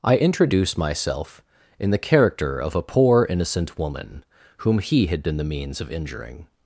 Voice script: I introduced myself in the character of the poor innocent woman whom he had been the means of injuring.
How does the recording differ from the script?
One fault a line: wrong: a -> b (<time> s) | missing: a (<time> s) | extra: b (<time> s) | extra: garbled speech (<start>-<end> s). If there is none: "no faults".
wrong: introduced -> introduce (0.2 s)
wrong: the -> a (2.8 s)